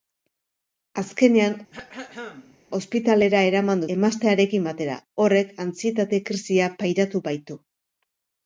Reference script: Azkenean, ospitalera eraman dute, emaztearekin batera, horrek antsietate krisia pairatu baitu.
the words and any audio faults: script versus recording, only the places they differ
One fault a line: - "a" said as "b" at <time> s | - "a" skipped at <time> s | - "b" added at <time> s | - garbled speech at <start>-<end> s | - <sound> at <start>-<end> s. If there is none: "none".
- throat clearing at 1.7-2.6 s
- "dute" skipped at 3.8 s